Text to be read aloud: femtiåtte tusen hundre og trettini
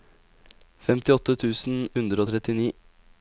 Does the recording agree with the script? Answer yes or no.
yes